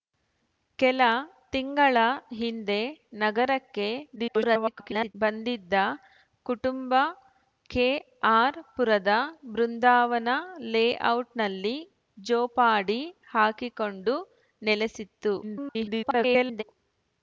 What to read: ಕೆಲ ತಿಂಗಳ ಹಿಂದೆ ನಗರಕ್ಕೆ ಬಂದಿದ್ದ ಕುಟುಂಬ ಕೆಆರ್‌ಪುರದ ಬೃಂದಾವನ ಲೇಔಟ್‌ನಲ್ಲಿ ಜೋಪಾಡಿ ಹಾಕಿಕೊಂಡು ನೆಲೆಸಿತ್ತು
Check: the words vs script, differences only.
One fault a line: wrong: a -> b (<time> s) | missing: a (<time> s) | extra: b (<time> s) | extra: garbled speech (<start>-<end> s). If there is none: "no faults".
extra: garbled speech (4.2-5.2 s)
extra: garbled speech (15.4-16.6 s)